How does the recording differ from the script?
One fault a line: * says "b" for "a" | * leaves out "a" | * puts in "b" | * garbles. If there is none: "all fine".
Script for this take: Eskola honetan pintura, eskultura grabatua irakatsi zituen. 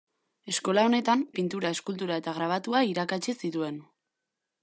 * puts in "eta"